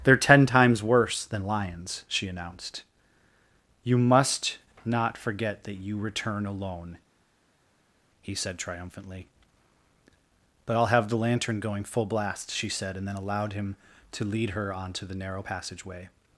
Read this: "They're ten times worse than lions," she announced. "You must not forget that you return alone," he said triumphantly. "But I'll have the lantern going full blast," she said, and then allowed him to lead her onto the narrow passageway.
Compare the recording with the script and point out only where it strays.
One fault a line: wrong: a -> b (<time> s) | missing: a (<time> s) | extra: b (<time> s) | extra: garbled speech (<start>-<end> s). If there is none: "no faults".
no faults